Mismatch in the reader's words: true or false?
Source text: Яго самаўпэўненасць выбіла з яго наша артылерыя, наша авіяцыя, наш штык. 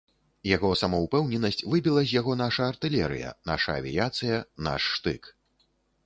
false